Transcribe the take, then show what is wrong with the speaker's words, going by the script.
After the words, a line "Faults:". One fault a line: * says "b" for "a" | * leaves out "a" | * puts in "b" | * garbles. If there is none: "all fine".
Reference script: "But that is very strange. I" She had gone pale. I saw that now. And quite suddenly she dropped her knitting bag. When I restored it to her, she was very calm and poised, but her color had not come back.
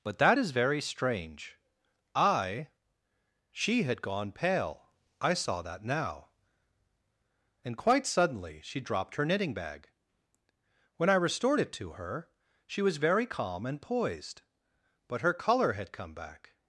"But that is very strange. I" She had gone pale. I saw that now. And quite suddenly she dropped her knitting bag. When I restored it to her, she was very calm and poised, but her color had come back.
Faults:
* leaves out "not"